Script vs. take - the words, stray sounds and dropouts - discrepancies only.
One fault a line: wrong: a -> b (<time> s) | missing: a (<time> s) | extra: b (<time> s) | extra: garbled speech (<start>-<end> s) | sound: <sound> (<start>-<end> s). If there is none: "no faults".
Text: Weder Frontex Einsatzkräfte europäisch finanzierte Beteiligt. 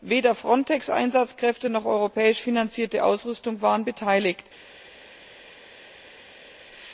extra: noch (1.7 s)
extra: Ausrüstung waren (3.0 s)